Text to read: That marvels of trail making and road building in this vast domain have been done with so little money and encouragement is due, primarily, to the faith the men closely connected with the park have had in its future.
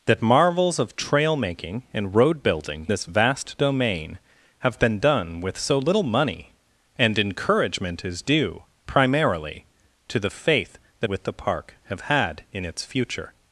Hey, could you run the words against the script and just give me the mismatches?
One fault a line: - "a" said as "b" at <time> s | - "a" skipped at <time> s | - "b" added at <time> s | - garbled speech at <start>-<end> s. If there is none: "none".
- "in" skipped at 2.9 s
- "men closely connected" skipped at 11.1 s